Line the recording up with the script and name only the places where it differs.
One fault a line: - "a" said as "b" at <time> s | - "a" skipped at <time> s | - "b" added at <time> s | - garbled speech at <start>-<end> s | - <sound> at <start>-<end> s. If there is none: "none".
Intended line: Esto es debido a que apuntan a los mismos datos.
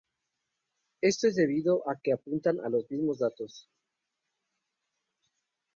none